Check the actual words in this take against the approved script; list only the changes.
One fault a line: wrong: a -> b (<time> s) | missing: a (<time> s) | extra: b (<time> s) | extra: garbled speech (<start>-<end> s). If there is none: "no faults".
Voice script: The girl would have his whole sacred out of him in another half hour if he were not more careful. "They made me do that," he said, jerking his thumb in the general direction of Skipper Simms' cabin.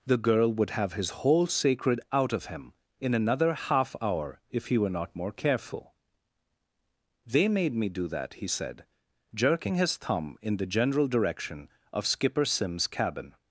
no faults